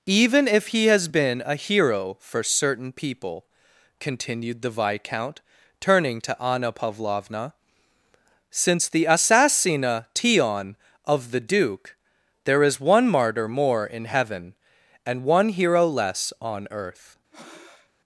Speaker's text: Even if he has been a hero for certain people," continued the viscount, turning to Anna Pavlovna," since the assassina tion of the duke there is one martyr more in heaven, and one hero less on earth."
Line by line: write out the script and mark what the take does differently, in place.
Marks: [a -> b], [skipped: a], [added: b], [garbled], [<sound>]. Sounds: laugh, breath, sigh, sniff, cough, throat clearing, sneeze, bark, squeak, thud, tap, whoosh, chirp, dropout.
Even if he has been a hero for certain people," continued the viscount, turning to Anna Pavlovna," since the assassina tion of the duke there is one martyr more in heaven, and one hero less on earth." [breath]